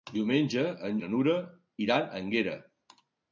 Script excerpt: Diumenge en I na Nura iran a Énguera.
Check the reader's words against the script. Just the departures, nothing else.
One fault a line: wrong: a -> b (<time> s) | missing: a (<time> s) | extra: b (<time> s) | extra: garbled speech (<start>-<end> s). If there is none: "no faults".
no faults